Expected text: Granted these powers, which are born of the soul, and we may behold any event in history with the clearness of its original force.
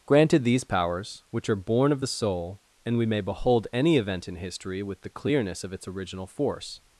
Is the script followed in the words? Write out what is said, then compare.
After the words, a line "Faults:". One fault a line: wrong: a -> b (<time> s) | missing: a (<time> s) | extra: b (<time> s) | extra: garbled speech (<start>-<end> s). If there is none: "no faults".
Granted these powers, which are born of the soul, and we may behold any event in history with the clearness of its original force.
Faults:
no faults